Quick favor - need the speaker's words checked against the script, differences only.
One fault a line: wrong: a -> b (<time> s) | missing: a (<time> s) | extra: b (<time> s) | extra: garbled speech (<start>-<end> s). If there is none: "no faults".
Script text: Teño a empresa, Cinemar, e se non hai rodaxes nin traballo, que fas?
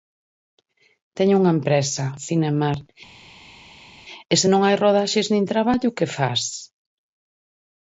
wrong: a -> unha (1.4 s)